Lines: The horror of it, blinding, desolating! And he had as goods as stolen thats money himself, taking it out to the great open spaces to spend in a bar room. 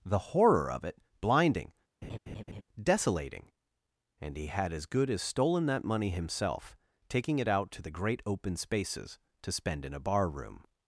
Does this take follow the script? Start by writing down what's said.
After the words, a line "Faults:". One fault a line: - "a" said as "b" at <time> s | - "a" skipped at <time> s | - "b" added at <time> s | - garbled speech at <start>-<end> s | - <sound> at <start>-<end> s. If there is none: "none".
The horror of it, blinding, desolating! And he had as good as stolen that money himself, taking it out to the great open spaces to spend in a bar room.
Faults:
- laugh at 2.0-2.6 s
- "goods" said as "good" at 4.9 s
- "thats" said as "that" at 5.7 s